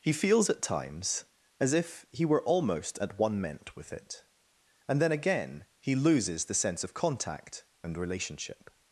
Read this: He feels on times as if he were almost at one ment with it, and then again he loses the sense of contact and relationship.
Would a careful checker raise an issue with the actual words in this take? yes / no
yes